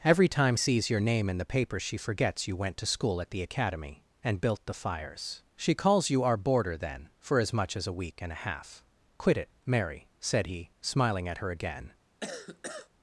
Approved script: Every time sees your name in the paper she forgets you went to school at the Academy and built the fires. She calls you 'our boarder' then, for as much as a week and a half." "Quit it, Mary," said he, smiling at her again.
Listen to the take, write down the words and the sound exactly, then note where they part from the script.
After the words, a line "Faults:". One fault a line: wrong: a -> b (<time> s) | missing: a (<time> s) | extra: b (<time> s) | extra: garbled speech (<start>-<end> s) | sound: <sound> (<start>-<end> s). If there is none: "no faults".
Every time sees your name in the paper she forgets you went to school at the Academy and built the fires. She calls you 'our boarder' then, for as much as a week and a half." "Quit it, Mary," said he, smiling at her again.
Faults:
sound: cough (12.2-12.9 s)